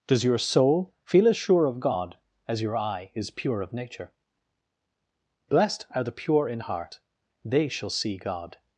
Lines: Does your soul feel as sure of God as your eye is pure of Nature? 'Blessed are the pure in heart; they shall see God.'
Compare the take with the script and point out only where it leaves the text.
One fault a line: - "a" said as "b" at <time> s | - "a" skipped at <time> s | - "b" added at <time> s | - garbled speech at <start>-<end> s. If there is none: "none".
none